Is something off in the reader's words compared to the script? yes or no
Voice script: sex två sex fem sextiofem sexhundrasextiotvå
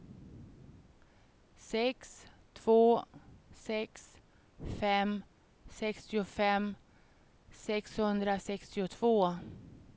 no